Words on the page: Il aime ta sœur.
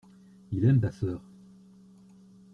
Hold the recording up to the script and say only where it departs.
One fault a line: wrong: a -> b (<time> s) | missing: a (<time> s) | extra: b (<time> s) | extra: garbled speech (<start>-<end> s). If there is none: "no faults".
no faults